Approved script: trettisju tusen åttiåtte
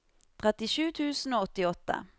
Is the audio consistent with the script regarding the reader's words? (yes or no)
no